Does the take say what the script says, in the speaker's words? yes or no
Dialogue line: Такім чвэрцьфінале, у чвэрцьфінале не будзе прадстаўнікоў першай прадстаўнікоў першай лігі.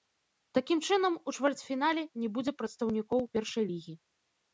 no